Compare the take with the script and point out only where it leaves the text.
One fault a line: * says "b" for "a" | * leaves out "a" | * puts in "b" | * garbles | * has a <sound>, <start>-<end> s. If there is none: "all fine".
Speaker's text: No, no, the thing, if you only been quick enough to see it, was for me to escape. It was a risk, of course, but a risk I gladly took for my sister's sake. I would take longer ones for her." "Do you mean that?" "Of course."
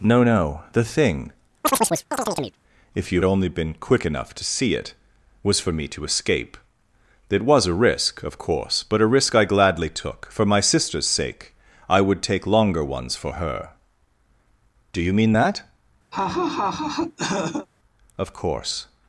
* has a chirp, 1.6-2.6 s
* has a laugh, 16.1-17.7 s